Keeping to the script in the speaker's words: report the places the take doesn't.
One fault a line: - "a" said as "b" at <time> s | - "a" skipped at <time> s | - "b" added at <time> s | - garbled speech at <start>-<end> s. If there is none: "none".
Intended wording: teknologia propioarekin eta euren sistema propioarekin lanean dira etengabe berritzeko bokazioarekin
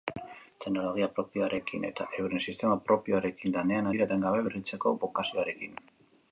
none